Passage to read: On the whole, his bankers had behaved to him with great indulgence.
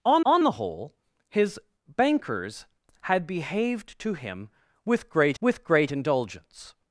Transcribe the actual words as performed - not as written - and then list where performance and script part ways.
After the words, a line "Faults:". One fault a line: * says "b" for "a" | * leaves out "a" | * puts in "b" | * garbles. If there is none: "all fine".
On on the whole, his bankers had behaved to him with great with great indulgence.
Faults:
* puts in "on"
* puts in "with great"